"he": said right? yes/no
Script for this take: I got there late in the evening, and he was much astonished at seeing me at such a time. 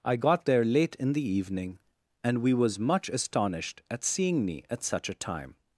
no